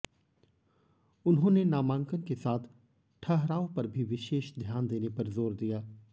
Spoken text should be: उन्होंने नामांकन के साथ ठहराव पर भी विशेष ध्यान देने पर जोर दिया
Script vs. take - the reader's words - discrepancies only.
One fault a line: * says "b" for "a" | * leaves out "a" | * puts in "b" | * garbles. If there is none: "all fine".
all fine